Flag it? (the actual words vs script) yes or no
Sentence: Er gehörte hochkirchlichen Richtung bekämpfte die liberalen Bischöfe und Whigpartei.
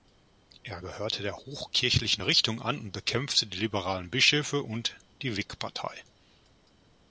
yes